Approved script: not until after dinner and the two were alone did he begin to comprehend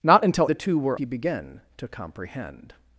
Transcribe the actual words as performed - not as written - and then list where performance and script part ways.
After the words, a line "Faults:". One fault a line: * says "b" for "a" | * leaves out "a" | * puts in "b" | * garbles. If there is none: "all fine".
not until the two were he begin to comprehend
Faults:
* leaves out "after dinner and"
* leaves out "alone did"